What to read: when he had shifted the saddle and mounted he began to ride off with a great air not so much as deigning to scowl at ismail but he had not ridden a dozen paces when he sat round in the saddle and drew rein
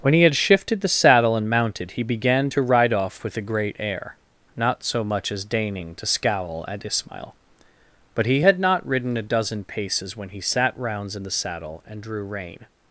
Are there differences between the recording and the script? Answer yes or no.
yes